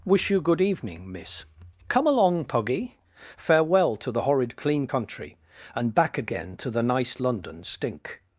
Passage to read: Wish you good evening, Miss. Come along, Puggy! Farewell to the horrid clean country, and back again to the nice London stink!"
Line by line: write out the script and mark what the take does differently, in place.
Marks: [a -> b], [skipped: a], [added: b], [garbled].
Wish you good evening, Miss. Come along, Puggy! Farewell to the horrid clean country, and back again to the nice London stink!"